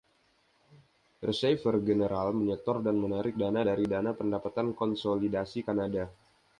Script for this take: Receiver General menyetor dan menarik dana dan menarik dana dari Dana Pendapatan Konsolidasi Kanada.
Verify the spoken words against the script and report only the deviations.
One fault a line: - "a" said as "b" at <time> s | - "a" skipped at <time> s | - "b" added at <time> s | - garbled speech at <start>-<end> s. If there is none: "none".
- "dan menarik dana" skipped at 3.7 s